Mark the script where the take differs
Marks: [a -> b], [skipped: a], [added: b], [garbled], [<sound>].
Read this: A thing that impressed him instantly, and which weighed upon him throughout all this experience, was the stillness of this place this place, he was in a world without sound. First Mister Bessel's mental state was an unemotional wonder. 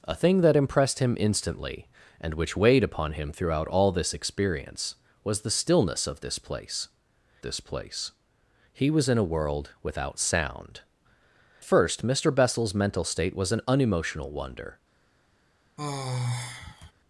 A thing that impressed him instantly, and which weighed upon him throughout all this experience, was the stillness of this place this place, he was in a world without sound. First Mister Bessel's mental state was an unemotional wonder. [sigh]